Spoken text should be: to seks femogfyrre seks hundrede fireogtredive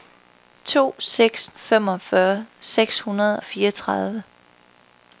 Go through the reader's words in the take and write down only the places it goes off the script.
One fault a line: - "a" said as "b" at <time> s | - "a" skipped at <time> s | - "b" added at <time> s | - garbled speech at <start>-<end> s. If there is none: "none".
none